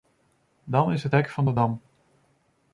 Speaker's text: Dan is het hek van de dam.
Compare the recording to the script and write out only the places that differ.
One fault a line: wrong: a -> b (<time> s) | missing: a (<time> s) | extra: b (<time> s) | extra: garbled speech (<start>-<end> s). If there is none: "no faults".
no faults